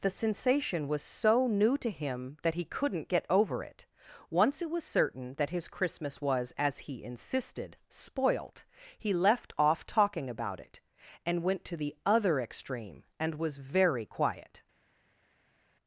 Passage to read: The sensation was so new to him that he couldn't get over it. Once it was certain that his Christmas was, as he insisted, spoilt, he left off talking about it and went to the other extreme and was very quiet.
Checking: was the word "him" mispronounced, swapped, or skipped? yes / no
no